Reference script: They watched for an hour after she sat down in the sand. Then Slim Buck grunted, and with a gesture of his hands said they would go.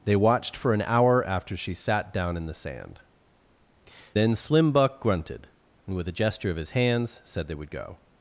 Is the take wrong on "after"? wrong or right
right